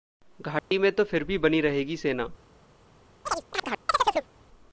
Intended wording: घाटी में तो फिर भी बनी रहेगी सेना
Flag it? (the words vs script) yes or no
no